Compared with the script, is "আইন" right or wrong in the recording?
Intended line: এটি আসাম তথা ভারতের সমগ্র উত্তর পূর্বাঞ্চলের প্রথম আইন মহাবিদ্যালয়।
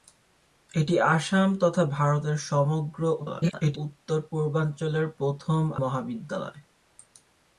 wrong